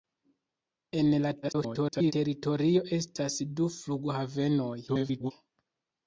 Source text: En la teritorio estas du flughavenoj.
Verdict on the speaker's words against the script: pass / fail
fail